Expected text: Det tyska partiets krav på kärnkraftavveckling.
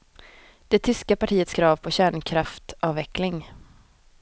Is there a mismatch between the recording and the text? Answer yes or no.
no